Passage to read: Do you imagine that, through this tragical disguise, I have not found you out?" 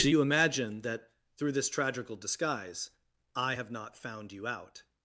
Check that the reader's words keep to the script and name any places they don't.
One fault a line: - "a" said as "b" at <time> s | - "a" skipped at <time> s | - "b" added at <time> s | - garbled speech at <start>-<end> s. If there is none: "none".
none